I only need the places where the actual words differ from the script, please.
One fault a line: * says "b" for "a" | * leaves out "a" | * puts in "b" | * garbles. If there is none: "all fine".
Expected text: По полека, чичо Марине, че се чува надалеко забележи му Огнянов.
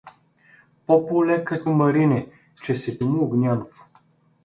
* leaves out "чичо"
* leaves out "чува надалеко забележи"